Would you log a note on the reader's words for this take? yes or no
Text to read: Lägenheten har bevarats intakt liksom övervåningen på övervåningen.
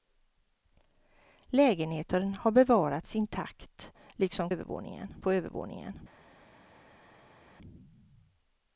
no